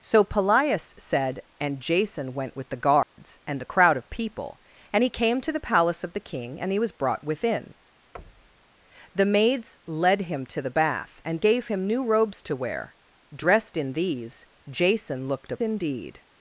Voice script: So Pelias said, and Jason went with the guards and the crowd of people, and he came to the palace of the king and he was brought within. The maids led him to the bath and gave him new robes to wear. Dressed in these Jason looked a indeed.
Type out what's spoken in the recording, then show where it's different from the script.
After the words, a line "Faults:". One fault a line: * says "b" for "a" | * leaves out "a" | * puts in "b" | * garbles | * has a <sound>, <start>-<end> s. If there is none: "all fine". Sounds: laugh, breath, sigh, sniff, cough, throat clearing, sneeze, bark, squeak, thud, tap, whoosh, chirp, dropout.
So Pelias said, and Jason went with the guards and the crowd of people, and he came to the palace of the king and he was brought within. The maids led him to the bath and gave him new robes to wear. Dressed in these Jason looked a indeed.
Faults:
* has a dropout, 3.0-3.2 s
* has a thud, 8.1-8.7 s